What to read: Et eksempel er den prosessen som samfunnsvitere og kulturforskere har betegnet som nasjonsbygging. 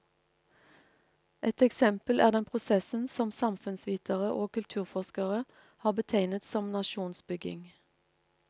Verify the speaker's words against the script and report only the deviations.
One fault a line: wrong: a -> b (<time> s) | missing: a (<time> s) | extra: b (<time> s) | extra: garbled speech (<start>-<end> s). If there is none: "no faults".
no faults